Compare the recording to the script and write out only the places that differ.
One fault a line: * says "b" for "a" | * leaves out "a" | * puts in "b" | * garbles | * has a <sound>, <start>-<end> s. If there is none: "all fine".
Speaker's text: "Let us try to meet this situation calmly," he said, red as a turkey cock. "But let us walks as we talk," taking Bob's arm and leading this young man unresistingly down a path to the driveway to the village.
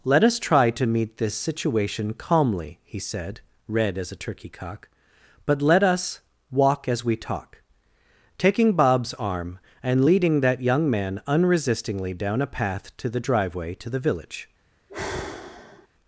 * says "walk" for "walks"
* says "that" for "this"
* has a sigh, 14.9-15.9 s